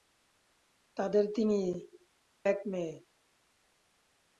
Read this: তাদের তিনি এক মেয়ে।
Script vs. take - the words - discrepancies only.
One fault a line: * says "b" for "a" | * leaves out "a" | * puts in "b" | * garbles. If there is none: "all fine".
all fine